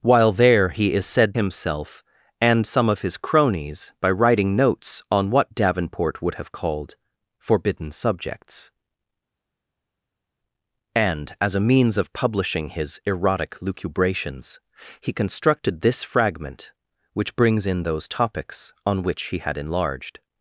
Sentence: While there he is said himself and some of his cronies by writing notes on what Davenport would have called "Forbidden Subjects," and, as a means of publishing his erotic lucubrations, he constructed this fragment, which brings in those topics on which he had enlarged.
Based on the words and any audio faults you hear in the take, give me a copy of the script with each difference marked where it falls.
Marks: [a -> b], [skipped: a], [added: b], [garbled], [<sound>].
While there he is said himself and some of his cronies by writing notes on what Davenport would have called "Forbidden Subjects," and, as a means of publishing his erotic lucubrations, he constructed this fragment, which brings in those topics on which he had enlarged.